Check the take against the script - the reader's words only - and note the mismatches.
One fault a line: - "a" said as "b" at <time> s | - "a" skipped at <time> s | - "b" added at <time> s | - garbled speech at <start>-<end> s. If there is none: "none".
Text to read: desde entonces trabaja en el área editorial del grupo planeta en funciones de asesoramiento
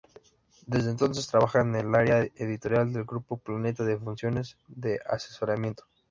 none